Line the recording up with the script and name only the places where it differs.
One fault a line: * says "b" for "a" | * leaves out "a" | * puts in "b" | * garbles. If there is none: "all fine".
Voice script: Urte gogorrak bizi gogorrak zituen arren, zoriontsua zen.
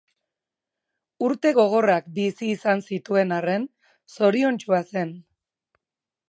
* says "izan" for "gogorrak"